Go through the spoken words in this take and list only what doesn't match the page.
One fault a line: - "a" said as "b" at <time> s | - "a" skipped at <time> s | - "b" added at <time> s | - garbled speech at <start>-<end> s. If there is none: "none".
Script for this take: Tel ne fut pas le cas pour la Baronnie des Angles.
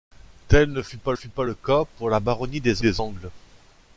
- "fut pas" added at 1.1 s
- "des" added at 2.8 s